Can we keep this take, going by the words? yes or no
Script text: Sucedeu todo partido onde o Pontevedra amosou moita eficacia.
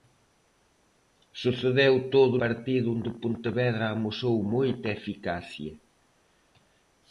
yes